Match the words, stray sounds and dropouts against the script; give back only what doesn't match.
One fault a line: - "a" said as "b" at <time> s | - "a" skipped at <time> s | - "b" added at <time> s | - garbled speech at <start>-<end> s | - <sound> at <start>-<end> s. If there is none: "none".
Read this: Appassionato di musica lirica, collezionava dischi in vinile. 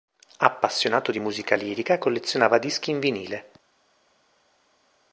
none